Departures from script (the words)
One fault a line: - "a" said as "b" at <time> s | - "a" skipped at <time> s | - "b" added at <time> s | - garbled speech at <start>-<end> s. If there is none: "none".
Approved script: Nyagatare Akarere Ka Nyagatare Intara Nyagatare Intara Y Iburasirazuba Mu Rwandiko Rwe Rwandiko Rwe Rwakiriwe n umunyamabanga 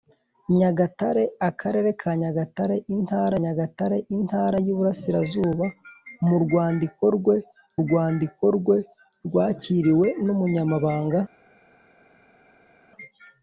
none